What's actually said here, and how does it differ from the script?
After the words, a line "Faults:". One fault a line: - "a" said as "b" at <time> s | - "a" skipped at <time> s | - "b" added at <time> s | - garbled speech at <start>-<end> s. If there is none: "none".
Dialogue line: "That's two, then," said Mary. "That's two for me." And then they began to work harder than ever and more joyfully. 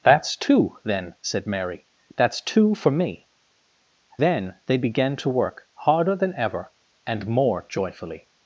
"That's two, then," said Mary. "That's two for me." Then they began to work harder than ever and more joyfully.
Faults:
- "And" skipped at 3.3 s